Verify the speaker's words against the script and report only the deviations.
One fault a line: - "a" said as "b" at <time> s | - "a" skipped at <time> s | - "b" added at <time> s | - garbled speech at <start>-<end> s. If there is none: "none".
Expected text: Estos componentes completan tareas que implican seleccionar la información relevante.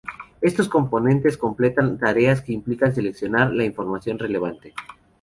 none